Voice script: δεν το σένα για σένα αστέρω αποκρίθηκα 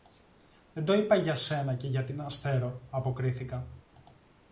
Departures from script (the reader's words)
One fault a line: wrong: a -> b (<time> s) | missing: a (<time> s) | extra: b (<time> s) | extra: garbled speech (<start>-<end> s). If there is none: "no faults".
extra: είπα για (0.9 s)
extra: και (1.8 s)
wrong: σένα -> την (2.0 s)